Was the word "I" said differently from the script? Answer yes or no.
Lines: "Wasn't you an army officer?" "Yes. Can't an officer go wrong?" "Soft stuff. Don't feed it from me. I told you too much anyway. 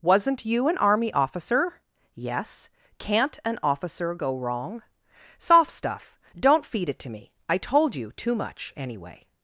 no